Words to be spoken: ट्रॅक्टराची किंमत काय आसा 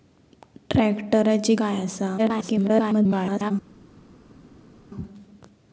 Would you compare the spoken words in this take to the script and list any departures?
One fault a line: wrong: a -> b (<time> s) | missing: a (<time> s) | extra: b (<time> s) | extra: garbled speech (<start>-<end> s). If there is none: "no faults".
missing: किंमत (1.6 s)
extra: garbled speech (2.2-3.5 s)